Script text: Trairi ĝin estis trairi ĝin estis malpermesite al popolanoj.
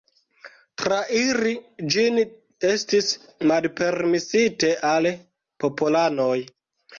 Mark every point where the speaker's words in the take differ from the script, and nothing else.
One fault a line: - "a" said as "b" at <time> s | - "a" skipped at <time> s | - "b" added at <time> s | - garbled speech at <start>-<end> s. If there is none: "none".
- "trairi ĝin estis" skipped at 3.1 s